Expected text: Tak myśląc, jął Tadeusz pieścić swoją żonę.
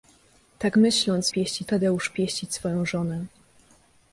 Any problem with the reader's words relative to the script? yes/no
yes